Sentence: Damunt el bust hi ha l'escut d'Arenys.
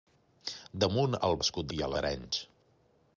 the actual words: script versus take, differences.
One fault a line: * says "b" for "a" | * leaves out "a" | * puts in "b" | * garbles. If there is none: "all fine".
* says "l'escut" for "bust"
* leaves out "l'escut"